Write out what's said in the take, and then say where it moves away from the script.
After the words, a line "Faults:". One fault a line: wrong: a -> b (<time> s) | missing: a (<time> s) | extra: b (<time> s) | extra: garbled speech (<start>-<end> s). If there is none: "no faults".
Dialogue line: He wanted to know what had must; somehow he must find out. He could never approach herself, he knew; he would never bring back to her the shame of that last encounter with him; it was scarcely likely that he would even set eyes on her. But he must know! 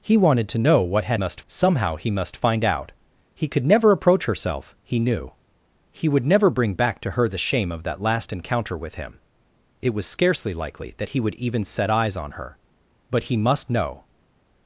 He wanted to know what had must; somehow he must find out. He could never approach herself, he knew; he would never bring back to her the shame of that last encounter with him; it was scarcely likely that he would even set eyes on her. But he must know!
Faults:
no faults